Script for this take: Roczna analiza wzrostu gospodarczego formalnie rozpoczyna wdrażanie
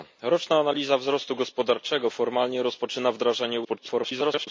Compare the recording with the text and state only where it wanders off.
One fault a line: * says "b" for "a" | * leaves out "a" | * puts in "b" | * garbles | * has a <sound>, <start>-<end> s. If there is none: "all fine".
* garbles